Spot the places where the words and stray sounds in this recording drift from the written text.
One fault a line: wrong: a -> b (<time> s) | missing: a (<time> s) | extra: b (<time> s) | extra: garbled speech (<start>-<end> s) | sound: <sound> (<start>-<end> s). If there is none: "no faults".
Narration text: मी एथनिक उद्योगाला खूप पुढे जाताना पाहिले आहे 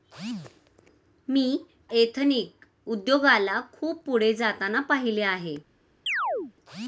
sound: chirp (6.1-6.5 s)